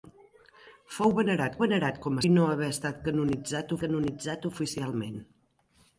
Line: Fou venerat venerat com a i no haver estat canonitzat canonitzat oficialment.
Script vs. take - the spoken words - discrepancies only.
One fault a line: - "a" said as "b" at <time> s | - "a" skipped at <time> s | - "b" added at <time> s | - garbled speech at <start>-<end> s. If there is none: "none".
none